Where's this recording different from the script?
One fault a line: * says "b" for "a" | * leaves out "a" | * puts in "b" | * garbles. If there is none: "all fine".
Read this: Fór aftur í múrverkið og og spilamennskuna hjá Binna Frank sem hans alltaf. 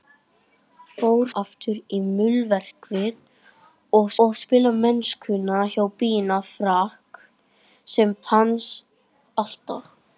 all fine